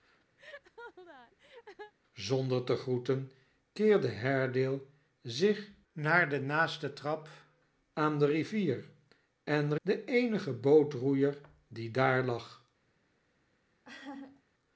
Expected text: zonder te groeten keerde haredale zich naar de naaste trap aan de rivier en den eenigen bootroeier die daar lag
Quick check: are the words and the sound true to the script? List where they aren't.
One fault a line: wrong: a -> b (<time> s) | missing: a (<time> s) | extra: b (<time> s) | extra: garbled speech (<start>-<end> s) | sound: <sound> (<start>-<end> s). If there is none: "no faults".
sound: laugh (0.4-1.9 s)
sound: laugh (13.8-14.4 s)